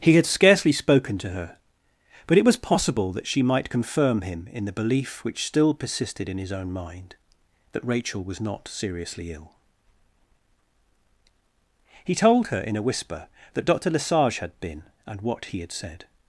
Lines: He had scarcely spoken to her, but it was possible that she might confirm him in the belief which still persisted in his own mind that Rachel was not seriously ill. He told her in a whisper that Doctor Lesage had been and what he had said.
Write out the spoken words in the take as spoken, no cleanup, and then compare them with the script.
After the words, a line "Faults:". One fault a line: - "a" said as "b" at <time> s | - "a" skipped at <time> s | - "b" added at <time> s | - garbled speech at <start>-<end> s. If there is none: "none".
He had scarcely spoken to her, but it was possible that she might confirm him in the belief which still persisted in his own mind that Rachel was not seriously ill. He told her in a whisper that Doctor Lesage had been and what he had said.
Faults:
none